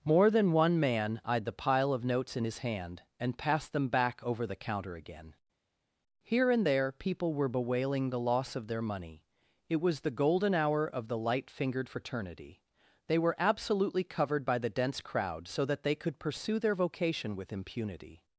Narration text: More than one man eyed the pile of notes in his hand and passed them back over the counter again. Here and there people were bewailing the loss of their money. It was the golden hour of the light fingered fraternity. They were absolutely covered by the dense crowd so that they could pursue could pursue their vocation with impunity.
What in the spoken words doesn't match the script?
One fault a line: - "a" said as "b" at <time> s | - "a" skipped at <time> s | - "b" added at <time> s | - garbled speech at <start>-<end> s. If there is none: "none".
- "could pursue" skipped at 16.6 s